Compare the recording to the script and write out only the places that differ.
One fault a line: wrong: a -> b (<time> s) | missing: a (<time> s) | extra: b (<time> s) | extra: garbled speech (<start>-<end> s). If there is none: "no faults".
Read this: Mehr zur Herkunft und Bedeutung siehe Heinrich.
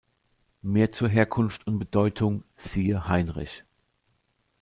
no faults